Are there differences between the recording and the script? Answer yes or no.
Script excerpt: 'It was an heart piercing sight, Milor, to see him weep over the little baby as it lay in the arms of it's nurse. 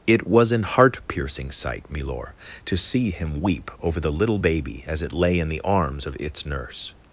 no